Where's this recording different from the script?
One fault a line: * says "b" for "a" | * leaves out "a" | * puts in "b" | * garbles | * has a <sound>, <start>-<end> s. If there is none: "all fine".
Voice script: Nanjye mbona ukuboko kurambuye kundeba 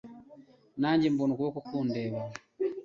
* leaves out "kurambuye"